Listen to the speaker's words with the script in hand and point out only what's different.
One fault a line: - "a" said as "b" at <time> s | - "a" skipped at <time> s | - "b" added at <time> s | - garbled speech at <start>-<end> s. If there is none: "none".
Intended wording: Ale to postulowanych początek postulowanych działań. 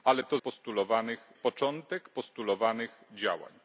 none